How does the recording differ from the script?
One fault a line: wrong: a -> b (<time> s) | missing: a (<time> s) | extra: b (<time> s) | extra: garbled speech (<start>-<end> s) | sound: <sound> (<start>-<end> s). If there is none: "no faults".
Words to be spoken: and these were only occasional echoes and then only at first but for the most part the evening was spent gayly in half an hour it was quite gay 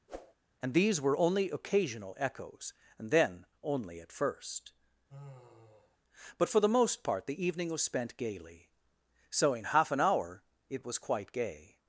sound: whoosh (0.1-0.3 s)
sound: sigh (5.1-6.0 s)
wrong: gayly -> gaily so (8.2 s)